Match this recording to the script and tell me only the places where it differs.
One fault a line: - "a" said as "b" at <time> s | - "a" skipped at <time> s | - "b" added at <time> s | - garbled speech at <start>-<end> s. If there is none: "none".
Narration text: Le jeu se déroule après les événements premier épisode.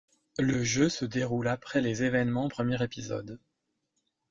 none